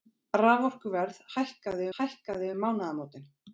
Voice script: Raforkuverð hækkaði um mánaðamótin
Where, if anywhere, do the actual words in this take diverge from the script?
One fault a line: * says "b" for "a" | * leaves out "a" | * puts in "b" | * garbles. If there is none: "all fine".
* puts in "hækkaði"